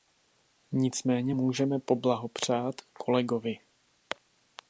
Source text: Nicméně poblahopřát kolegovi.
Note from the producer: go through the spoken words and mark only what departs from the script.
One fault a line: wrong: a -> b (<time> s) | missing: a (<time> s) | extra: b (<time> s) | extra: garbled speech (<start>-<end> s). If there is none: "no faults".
extra: můžeme (1.3 s)